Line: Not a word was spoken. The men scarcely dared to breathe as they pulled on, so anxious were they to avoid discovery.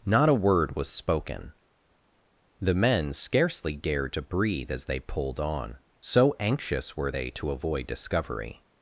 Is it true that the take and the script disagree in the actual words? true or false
false